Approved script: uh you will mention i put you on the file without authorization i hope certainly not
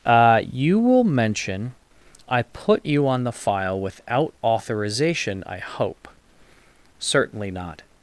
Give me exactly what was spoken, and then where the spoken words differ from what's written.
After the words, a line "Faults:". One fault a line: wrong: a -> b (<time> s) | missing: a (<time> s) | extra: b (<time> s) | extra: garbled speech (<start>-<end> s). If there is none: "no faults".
uh you will mention i put you on the file without authorization i hope certainly not
Faults:
no faults